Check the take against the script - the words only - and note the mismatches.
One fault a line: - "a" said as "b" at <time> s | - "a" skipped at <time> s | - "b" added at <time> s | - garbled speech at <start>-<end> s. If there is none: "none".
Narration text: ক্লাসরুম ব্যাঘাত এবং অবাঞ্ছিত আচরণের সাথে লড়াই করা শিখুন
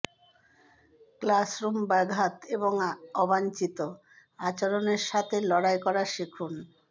none